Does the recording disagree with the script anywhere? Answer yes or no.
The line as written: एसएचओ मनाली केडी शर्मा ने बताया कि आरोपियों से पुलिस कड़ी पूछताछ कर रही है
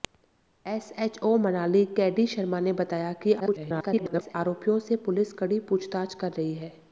yes